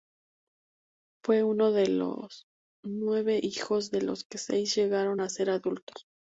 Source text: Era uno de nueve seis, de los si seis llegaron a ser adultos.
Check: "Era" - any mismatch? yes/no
yes